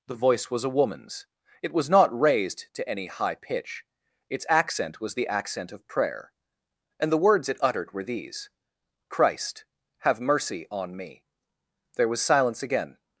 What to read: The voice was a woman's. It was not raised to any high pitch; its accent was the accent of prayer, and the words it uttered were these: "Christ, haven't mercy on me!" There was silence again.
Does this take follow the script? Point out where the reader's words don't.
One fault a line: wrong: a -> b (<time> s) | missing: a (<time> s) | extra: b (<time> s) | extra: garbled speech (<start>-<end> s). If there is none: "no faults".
wrong: haven't -> have (10.0 s)